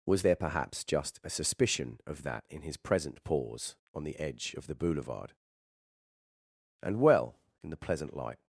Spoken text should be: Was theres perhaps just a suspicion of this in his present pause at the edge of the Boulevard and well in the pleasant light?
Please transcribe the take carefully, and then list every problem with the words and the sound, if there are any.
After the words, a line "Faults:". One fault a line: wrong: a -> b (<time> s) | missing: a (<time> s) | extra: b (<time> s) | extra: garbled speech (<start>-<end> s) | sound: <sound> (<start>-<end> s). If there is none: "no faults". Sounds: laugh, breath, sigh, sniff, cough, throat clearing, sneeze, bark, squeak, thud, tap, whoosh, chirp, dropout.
Was there perhaps just a suspicion of that in his present pause on the edge of the Boulevard and well in the pleasant light?
Faults:
wrong: theres -> there (0.2 s)
wrong: this -> that (2.2 s)
wrong: at -> on (3.9 s)